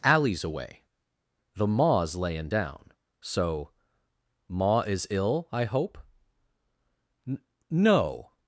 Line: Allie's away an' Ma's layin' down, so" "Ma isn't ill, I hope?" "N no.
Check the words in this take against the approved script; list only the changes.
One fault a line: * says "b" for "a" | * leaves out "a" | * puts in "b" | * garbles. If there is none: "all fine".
* says "the" for "an"
* says "is" for "isn't"